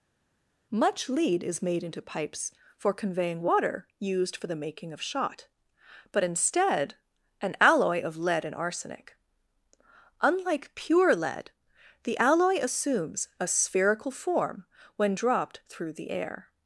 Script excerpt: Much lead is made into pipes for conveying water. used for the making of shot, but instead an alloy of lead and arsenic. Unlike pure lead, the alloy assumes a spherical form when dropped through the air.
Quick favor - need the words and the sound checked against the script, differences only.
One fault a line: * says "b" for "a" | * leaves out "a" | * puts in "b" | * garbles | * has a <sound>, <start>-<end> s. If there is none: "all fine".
all fine